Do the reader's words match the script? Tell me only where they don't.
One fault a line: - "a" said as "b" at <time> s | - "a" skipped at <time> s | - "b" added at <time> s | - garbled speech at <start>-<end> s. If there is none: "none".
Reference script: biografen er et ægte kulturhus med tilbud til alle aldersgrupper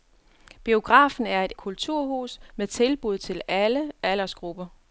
- "ægte" skipped at 1.5 s